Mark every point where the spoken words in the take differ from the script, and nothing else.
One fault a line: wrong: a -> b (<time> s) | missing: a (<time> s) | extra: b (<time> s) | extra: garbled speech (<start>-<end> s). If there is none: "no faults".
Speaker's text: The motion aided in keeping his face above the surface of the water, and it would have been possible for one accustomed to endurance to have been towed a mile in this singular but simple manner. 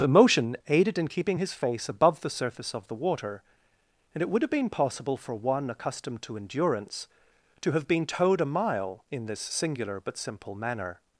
no faults